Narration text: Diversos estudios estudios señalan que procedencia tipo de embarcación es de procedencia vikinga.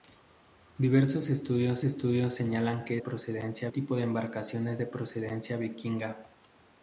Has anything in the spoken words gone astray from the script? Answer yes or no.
no